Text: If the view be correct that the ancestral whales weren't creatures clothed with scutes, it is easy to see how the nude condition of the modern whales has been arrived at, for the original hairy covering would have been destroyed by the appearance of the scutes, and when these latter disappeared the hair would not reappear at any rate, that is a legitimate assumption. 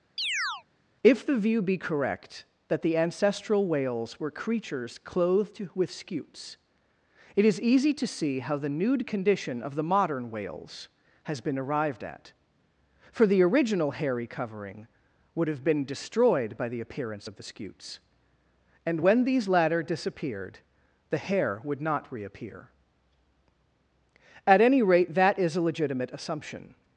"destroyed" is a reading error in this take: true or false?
false